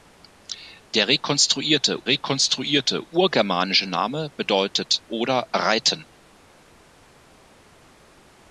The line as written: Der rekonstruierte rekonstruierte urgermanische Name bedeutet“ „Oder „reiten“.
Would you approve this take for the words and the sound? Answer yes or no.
yes